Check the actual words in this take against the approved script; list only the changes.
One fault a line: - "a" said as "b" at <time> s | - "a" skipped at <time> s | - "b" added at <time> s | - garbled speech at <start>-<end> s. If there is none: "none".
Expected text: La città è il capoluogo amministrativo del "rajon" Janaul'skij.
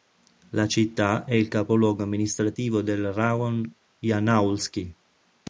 none